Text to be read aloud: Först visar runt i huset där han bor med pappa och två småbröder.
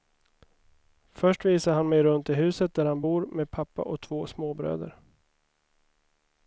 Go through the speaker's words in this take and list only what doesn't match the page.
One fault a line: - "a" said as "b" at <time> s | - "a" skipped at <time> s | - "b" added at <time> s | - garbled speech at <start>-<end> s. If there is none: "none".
- "han mig" added at 1.7 s